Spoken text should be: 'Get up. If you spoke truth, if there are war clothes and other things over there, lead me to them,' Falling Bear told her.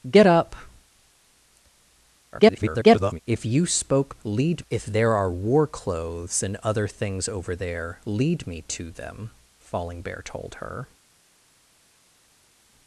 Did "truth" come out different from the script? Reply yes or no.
yes